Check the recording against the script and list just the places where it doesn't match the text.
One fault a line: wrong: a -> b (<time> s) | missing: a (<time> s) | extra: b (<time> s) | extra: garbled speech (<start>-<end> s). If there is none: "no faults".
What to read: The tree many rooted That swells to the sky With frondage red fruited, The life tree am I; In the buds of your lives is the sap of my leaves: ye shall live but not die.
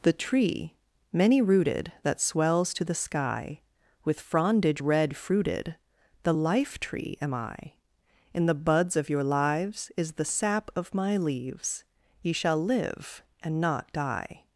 wrong: but -> and (13.4 s)